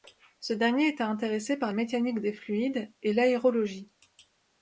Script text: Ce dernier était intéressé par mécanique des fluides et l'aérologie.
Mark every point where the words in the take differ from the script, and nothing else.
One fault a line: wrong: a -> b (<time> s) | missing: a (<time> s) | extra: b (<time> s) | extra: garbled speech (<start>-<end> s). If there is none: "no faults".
no faults